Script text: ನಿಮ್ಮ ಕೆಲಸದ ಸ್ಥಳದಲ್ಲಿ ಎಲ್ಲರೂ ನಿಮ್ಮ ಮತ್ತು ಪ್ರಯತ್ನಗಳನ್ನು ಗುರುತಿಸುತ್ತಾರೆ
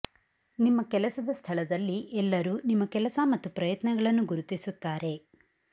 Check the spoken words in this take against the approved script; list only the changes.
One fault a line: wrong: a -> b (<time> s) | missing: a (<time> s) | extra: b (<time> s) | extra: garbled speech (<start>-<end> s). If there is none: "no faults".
extra: ಕೆಲಸ (2.9 s)